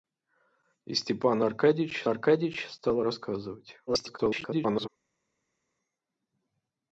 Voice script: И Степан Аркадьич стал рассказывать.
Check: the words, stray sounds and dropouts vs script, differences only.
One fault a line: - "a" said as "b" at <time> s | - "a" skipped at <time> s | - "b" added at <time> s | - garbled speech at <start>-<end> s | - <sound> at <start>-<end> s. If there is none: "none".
- "Аркадьич" added at 2.1 s
- garbled speech at 3.9-4.9 s